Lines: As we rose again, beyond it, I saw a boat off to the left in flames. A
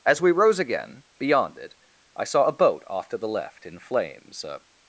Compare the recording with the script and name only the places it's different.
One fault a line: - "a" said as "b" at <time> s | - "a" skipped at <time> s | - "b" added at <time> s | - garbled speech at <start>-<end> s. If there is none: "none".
none